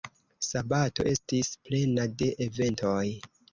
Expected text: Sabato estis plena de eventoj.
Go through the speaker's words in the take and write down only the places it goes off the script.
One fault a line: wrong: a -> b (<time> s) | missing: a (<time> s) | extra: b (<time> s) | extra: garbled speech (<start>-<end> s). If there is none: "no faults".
no faults